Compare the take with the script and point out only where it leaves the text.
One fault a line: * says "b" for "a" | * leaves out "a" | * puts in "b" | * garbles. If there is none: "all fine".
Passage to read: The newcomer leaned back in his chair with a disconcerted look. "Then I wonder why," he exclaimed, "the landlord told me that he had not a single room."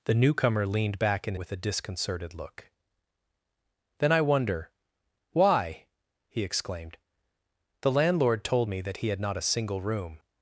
* leaves out "his chair"